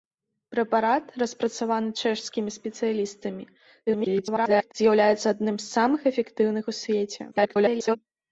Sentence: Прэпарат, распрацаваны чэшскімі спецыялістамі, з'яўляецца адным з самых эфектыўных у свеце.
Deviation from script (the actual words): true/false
true